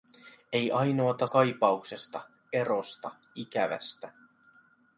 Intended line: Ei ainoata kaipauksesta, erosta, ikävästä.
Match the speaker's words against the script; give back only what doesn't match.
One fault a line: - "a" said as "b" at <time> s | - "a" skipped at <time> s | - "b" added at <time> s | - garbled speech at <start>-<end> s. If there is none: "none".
none